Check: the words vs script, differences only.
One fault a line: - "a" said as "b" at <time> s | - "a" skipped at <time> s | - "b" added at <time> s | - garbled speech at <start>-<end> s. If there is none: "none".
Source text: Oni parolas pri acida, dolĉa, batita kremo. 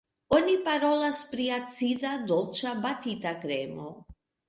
none